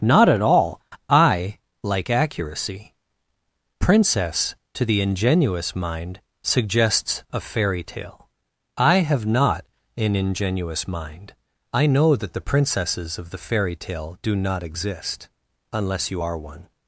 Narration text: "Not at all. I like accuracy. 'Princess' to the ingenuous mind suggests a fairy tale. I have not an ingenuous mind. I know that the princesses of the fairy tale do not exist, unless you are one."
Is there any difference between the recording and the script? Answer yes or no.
no